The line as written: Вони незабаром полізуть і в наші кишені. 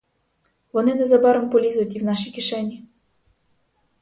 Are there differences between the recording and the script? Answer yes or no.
no